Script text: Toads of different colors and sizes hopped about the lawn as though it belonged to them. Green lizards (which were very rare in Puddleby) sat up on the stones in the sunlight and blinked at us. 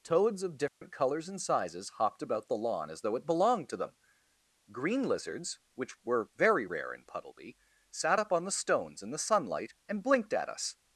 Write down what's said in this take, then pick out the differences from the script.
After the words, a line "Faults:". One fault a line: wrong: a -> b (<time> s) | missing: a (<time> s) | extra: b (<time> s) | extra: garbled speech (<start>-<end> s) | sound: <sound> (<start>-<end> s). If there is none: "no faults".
Toads of different colors and sizes hopped about the lawn as though it belonged to them. Green lizards (which were very rare in Puddleby) sat up on the stones in the sunlight and blinked at us.
Faults:
sound: dropout (0.7-0.8 s)